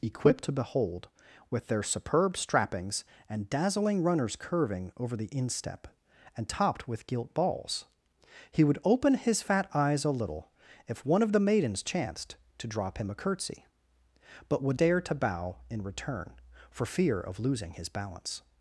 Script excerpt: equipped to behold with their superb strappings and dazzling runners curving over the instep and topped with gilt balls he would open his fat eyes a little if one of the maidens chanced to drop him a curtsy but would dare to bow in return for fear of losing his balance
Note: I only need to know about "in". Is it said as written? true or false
true